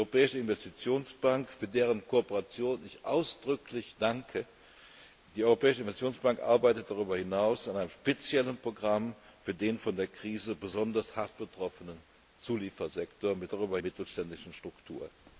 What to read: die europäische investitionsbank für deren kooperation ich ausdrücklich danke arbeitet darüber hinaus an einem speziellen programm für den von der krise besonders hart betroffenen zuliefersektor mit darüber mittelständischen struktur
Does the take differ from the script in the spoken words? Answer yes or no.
no